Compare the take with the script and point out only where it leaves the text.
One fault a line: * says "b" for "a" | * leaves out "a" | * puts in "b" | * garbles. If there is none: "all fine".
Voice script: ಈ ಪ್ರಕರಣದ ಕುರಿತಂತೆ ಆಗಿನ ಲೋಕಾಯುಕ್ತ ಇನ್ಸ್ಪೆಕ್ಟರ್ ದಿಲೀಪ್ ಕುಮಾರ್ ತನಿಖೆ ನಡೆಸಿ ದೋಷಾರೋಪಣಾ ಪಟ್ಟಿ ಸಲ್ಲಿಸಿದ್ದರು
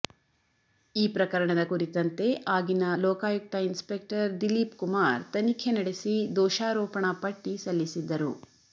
all fine